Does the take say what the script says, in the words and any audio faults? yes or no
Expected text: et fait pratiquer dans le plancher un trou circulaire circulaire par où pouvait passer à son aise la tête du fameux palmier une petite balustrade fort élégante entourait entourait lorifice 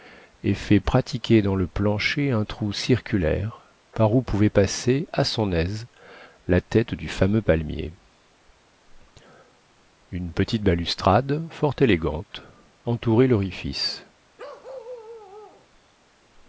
no